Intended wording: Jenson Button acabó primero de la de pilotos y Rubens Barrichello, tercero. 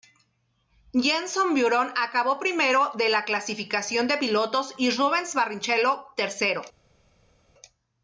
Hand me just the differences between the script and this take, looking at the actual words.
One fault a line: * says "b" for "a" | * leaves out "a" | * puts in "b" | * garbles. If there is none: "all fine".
* puts in "clasificación"